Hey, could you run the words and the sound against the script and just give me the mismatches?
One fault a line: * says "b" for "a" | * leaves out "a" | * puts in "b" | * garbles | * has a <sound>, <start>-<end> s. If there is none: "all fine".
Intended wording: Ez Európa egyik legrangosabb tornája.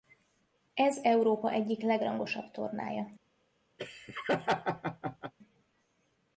* has a laugh, 3.8-5.3 s